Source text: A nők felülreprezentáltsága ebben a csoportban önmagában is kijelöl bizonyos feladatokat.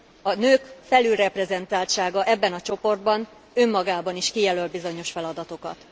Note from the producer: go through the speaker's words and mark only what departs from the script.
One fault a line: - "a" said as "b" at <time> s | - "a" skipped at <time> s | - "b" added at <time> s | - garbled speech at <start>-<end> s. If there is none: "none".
none